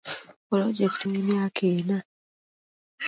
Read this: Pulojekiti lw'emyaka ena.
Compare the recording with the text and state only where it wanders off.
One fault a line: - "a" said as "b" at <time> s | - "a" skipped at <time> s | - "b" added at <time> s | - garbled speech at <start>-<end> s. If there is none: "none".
none